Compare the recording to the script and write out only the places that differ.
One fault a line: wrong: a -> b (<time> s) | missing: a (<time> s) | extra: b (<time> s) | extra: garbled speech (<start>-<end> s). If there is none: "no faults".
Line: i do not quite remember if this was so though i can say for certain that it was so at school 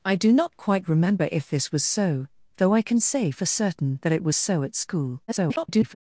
extra: garbled speech (5.3-6.0 s)